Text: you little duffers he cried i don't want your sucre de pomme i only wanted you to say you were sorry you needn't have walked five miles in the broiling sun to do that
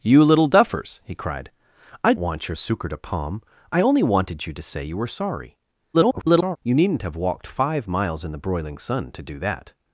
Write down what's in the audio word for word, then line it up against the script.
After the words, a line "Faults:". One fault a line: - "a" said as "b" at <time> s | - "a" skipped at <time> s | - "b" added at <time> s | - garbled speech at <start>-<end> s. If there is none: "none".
you little duffers he cried i want your sucre de pomme i only wanted you to say you were sorry [garbled] you needn't have walked five miles in the broiling sun to do that
Faults:
- "don't" skipped at 2.1 s
- garbled speech at 5.9-6.6 s